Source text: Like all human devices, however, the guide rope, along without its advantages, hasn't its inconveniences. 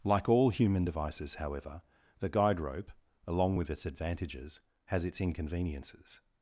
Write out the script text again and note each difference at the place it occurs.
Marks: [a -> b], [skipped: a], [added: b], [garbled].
Like all human devices, however, the guide rope, along [without -> with] its advantages, [hasn't -> has] its inconveniences.